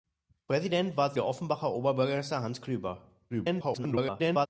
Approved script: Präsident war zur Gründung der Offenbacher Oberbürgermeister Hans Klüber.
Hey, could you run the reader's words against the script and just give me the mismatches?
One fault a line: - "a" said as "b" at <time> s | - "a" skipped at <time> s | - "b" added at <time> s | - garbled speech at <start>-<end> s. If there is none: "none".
- "zur Gründung" skipped at 1.1 s
- garbled speech at 3.3-4.5 s